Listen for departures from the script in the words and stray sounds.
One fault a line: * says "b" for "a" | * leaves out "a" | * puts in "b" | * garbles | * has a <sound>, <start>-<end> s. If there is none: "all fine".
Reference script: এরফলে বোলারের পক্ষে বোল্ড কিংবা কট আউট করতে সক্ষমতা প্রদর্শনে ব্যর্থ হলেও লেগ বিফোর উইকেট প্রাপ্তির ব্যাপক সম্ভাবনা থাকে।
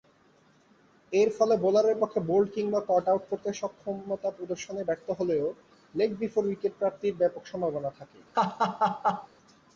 * has a laugh, 8.3-9.3 s